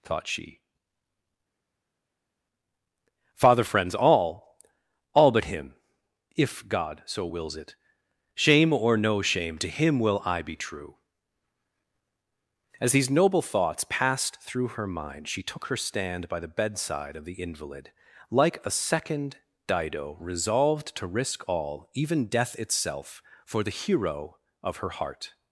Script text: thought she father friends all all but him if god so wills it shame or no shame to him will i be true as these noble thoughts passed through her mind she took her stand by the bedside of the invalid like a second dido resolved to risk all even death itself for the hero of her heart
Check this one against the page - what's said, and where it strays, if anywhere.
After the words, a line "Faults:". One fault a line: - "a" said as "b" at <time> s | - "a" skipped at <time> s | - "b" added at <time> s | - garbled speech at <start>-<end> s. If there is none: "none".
thought she father friends all all but him if god so wills it shame or no shame to him will i be true as these noble thoughts passed through her mind she took her stand by the bedside of the invalid like a second dido resolved to risk all even death itself for the hero of her heart
Faults:
none